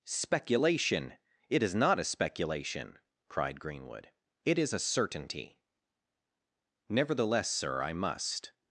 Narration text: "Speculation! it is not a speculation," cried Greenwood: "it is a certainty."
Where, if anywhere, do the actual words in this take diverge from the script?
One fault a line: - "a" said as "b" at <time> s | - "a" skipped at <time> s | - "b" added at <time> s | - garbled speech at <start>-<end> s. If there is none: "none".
- "Nevertheless sir I must" added at 6.9 s